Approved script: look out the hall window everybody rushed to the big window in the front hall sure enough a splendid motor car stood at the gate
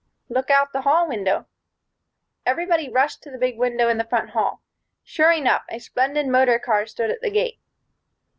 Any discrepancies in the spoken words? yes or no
no